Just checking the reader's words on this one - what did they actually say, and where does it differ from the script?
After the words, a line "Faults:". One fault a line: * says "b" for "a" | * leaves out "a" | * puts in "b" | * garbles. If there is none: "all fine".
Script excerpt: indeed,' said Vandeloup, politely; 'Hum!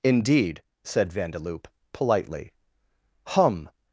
indeed,' said Vandeloup, politely; 'Hum!
Faults:
all fine